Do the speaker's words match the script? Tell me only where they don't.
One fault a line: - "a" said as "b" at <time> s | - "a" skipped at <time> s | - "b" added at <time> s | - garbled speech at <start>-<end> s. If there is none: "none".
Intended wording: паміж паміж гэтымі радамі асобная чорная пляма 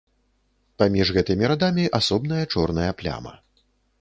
- "паміж" skipped at 1.1 s